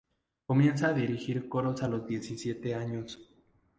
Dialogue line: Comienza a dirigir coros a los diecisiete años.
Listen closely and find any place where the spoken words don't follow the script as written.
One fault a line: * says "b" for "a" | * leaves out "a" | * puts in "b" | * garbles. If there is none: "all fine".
all fine